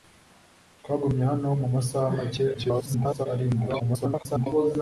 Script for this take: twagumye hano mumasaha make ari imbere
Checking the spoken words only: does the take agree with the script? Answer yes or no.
no